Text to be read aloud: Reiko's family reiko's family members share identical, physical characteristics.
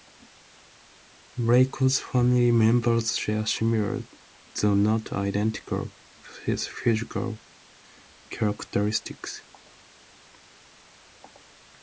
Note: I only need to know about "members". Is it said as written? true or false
false